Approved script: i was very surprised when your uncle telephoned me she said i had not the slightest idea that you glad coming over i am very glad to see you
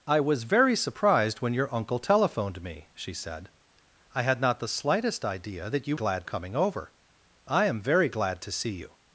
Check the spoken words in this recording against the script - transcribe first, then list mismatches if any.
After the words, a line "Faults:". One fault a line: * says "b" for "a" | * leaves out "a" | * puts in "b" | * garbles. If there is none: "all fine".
i was very surprised when your uncle telephoned me she said i had not the slightest idea that you glad coming over i am very glad to see you
Faults:
all fine